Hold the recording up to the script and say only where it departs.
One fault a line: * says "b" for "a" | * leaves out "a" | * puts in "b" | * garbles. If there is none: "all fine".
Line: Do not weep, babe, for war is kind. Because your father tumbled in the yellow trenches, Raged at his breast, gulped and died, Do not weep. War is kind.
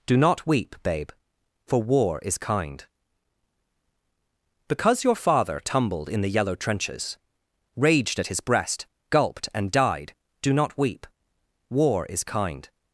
all fine